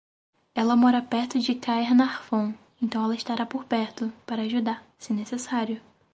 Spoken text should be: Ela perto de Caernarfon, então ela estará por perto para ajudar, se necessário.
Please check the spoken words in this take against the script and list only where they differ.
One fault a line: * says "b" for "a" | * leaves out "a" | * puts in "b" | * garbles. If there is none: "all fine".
* puts in "mora"